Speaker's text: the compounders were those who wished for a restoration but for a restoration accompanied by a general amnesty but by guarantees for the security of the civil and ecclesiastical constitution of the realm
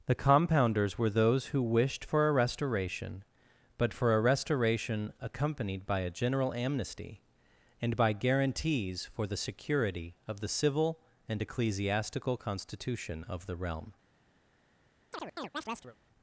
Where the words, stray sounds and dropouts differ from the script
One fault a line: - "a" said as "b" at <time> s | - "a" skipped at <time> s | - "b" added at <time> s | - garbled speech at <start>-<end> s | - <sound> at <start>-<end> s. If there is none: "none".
- "but" said as "and" at 7.8 s
- chirp at 15.1-16.0 s